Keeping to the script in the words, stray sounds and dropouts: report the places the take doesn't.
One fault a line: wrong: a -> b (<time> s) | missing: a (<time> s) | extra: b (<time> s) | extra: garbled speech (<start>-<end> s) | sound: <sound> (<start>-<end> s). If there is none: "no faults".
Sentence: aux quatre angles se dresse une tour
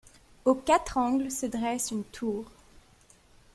no faults